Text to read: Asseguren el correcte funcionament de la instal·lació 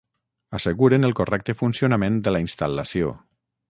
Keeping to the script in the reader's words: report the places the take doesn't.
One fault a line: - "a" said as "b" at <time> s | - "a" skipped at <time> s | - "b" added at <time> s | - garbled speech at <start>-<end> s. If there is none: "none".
none